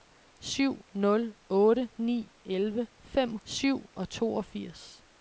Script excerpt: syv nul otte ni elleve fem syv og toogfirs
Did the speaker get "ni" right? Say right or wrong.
right